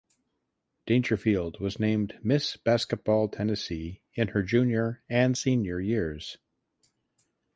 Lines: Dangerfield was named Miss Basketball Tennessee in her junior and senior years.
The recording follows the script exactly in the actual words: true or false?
true